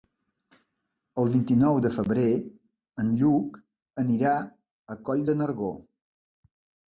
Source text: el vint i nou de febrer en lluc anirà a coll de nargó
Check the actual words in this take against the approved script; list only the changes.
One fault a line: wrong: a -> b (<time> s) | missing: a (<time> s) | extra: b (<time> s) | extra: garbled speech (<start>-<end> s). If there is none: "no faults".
no faults